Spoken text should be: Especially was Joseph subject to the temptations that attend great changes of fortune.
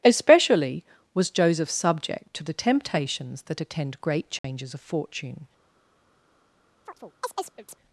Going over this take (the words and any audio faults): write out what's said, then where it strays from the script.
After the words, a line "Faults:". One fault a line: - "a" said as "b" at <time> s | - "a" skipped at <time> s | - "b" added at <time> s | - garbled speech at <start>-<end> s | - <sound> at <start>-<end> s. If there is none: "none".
Especially was Joseph subject to the temptations that attend great changes of fortune.
Faults:
- dropout at 4.4-4.4 s
- chirp at 6.9-7.8 s